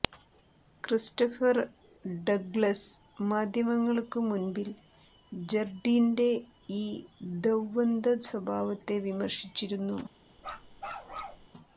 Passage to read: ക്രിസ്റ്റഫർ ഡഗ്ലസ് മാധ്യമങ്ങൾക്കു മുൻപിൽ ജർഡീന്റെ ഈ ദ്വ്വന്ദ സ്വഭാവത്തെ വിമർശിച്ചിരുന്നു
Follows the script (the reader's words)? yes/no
yes